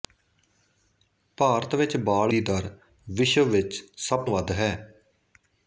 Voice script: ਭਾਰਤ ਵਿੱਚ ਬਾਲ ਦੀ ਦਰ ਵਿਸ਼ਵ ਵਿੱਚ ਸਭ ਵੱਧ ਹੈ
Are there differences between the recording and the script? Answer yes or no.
no